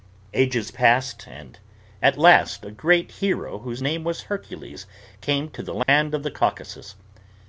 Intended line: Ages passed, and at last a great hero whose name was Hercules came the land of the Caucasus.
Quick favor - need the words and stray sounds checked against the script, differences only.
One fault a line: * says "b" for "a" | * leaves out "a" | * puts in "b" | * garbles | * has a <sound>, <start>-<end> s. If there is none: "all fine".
* puts in "to"
* has a dropout, 5.8-5.9 s